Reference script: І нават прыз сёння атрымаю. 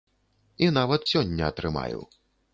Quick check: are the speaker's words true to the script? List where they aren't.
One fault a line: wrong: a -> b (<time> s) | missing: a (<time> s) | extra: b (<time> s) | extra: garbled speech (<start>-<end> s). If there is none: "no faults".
missing: прыз (1.1 s)